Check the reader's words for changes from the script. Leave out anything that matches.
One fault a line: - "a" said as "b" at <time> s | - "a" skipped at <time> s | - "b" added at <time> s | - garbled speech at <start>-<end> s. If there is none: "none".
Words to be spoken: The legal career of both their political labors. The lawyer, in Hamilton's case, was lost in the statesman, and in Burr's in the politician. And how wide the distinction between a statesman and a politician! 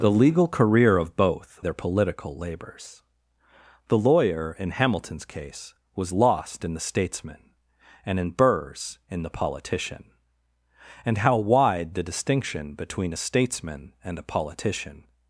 none